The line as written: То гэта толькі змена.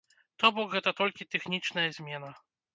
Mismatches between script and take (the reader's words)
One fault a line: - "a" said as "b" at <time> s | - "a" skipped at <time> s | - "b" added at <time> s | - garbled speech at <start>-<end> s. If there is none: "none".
- "бок" added at 0.6 s
- "тэхнічная" added at 1.3 s